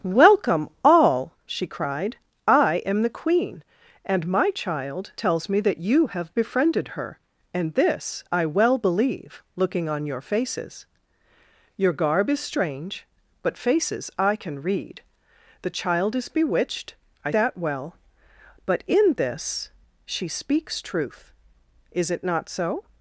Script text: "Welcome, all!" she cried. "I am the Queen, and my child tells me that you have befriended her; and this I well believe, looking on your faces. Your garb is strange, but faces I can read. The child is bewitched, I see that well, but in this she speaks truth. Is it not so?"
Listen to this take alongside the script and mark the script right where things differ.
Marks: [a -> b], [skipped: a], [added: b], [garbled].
"Welcome, all!" she cried. "I am the Queen, and my child tells me that you have befriended her; and this I well believe, looking on your faces. Your garb is strange, but faces I can read. The child is bewitched, I [skipped: see] that well, but in this she speaks truth. Is it not so?"